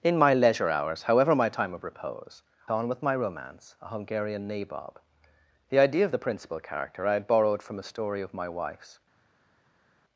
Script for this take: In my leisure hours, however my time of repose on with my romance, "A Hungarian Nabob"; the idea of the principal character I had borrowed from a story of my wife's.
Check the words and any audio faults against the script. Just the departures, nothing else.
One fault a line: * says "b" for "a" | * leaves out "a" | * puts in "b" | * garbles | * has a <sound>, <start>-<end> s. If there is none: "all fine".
all fine